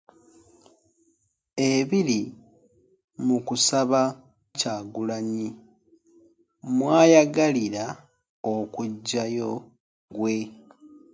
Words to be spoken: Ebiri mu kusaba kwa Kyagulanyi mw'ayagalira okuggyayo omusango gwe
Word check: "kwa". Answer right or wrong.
wrong